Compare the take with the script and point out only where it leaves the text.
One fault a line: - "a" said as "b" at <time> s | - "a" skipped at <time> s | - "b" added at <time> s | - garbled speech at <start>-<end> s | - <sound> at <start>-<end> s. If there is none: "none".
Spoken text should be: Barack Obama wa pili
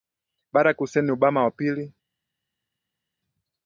- "Hussein" added at 0.8 s